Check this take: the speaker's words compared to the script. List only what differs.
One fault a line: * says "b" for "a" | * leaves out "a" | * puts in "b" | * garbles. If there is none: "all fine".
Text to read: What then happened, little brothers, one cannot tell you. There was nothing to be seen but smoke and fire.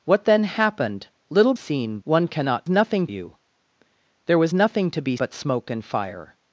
* says "seen" for "brothers"
* says "nothing" for "tell"
* leaves out "seen"